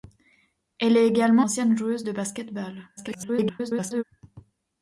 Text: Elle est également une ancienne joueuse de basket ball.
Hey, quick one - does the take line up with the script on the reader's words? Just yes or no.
no